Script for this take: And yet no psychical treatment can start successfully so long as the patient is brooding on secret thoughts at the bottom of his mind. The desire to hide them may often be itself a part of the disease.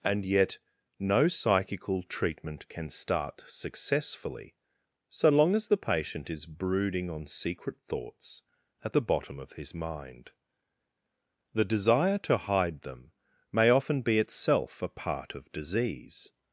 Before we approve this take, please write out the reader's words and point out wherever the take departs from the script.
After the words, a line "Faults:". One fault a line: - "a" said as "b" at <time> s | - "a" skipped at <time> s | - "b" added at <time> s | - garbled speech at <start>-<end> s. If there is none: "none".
And yet no psychical treatment can start successfully so long as the patient is brooding on secret thoughts at the bottom of his mind. The desire to hide them may often be itself a part of disease.
Faults:
- "the" skipped at 15.5 s